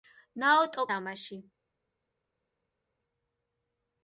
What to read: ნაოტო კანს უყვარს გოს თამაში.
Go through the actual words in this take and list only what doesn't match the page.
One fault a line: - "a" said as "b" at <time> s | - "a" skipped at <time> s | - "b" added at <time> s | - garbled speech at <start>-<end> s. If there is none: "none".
- "კანს უყვარს გოს" skipped at 0.9 s